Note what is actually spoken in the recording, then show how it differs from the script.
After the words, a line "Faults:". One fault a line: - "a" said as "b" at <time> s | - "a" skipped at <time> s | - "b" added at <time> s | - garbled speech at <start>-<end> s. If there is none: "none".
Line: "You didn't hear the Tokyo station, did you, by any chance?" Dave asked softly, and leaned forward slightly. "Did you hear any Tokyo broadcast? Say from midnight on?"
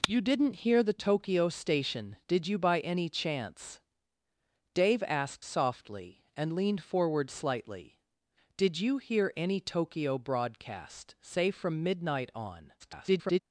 "You didn't hear the Tokyo station, did you, by any chance?" Dave asked softly, and leaned forward slightly. "Did you hear any Tokyo broadcast? Say from midnight on?" [garbled]
Faults:
- garbled speech at 12.8-13.4 s